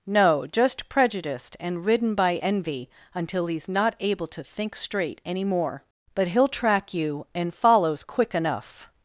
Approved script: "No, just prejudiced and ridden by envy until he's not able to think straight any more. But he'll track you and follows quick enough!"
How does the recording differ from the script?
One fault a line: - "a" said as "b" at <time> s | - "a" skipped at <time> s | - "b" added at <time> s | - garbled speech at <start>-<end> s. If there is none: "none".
none